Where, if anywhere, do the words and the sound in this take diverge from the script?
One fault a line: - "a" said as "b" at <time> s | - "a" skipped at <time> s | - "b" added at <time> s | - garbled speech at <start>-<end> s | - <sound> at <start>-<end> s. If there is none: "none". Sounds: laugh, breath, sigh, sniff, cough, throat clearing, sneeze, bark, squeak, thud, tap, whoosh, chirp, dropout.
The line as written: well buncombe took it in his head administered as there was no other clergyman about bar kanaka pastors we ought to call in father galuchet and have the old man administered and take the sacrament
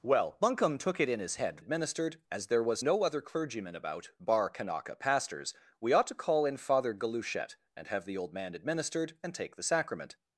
none